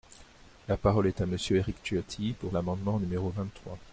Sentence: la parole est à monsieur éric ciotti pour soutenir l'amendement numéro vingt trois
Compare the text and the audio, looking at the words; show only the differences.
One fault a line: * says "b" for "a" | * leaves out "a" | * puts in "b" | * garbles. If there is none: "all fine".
* leaves out "soutenir"